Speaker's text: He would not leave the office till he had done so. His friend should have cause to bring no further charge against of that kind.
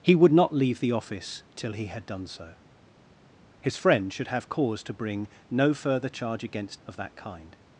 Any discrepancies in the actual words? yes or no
no